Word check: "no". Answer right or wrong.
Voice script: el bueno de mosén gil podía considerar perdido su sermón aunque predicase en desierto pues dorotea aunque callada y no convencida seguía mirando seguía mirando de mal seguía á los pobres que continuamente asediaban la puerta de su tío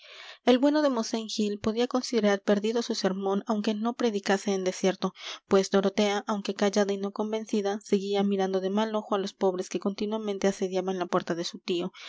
right